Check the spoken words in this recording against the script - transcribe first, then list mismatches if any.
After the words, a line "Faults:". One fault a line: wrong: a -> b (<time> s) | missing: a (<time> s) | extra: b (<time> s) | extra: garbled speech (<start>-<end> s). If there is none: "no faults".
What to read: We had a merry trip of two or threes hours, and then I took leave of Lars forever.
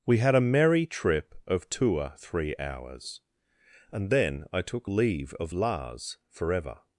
We had a merry trip of two or three hours, and then I took leave of Lars forever.
Faults:
wrong: threes -> three (2.2 s)